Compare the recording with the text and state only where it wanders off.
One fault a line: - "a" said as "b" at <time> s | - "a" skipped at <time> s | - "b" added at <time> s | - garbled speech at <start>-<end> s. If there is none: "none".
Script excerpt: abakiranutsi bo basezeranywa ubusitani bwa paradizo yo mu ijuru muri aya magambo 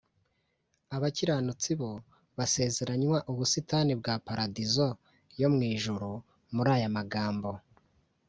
none